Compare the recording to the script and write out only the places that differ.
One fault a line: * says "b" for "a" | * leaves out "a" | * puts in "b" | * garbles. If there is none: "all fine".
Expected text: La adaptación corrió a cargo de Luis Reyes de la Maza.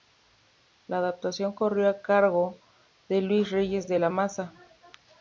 all fine